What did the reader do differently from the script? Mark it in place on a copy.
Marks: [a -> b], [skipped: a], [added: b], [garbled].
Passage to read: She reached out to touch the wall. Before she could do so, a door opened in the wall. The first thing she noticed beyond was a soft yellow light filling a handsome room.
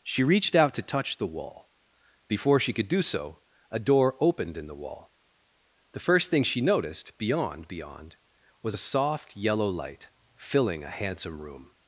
She reached out to touch the wall. Before she could do so, a door opened in the wall. The first thing she noticed beyond [added: beyond] was a soft yellow light filling a handsome room.